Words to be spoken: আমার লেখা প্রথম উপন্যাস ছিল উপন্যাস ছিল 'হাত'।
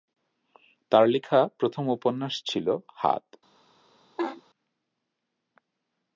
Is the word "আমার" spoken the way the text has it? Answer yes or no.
no